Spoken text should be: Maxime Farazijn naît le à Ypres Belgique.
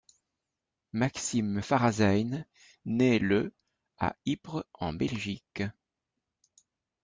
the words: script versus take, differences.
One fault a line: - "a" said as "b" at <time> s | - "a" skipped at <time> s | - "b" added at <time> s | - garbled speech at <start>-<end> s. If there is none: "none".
- "en" added at 4.7 s